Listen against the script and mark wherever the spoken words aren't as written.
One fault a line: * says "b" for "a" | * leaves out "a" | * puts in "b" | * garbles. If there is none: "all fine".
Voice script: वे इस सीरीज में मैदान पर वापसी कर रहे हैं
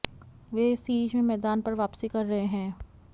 all fine